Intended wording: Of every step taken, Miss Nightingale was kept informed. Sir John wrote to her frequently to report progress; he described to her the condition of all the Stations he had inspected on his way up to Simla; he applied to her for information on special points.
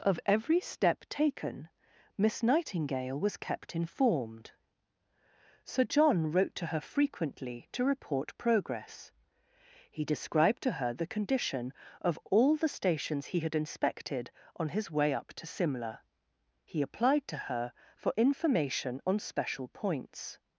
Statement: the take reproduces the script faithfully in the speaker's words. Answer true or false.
true